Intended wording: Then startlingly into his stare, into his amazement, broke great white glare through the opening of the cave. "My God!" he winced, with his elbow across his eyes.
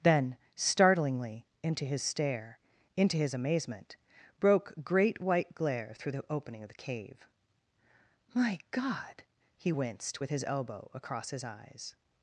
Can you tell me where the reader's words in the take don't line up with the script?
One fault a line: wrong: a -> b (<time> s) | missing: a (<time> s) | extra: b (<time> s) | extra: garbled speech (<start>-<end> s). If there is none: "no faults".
no faults